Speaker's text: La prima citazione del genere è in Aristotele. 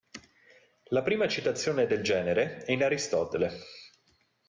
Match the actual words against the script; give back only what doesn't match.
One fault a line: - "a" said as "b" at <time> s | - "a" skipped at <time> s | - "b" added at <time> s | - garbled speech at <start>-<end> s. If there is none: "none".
none